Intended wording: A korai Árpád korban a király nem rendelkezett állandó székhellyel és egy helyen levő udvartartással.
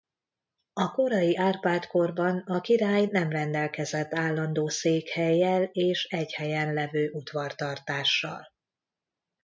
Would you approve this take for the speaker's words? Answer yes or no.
yes